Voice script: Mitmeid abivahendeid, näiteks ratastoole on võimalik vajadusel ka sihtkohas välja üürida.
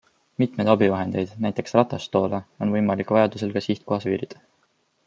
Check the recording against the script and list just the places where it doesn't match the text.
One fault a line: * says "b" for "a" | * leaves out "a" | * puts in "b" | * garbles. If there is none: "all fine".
* leaves out "välja"